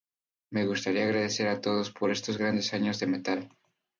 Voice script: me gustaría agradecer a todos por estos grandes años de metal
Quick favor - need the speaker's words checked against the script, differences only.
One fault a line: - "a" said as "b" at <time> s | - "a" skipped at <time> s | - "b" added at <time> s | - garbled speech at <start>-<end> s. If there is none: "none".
none